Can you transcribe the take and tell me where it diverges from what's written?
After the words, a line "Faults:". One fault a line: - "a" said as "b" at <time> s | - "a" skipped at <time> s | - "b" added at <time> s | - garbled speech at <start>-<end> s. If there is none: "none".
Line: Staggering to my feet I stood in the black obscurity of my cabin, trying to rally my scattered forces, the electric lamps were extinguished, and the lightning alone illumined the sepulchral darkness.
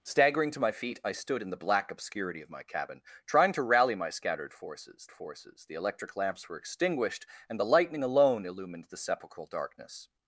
Staggering to my feet I stood in the black obscurity of my cabin, trying to rally my scattered forces forces, the electric lamps were extinguished, and the lightning alone illumined the sepulchral darkness.
Faults:
- "forces" added at 5.1 s